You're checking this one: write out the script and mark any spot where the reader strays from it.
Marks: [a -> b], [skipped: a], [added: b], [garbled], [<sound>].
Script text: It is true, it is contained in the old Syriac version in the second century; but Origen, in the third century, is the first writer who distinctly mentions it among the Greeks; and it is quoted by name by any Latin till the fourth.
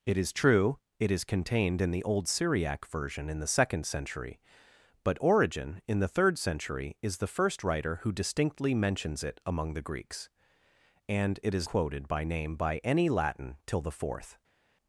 It is true, it is contained in the old Syriac version in the second century; but Origen, in the third century, is the first writer who distinctly mentions it among the Greeks; and it is quoted by name by any Latin till the fourth.